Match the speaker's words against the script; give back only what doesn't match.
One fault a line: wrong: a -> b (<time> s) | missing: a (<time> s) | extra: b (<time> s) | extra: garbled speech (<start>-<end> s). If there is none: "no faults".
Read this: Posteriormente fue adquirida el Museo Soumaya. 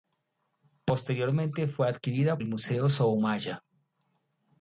no faults